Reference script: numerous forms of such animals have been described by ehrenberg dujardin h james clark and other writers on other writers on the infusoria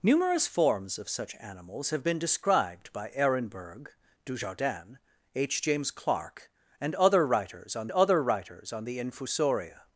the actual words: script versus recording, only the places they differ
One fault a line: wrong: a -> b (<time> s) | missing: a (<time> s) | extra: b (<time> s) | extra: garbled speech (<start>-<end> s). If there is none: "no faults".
no faults